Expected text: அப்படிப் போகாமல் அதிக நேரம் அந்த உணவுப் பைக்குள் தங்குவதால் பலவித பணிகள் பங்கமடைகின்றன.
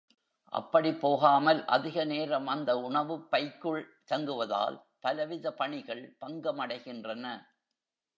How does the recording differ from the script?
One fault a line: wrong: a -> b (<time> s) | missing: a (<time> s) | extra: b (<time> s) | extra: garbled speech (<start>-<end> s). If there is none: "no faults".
no faults